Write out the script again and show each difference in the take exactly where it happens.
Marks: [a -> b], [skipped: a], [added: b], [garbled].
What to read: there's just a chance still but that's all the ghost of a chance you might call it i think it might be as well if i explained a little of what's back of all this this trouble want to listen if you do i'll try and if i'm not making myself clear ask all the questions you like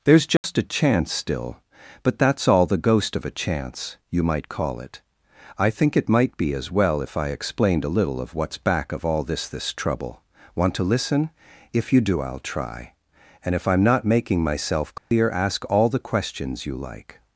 there's just a chance still but that's all the ghost of a chance you might call it i think it might be as well if i explained a little of what's back of all this this trouble want to listen if you do i'll try and if i'm not making myself clear ask all the questions you like